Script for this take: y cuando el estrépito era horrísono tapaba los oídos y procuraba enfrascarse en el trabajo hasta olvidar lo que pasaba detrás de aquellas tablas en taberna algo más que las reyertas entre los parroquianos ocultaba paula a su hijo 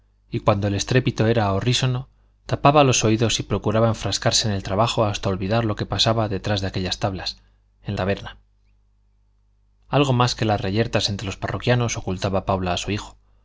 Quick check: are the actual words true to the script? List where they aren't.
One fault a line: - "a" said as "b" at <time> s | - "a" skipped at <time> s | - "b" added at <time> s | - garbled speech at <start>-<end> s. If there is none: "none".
none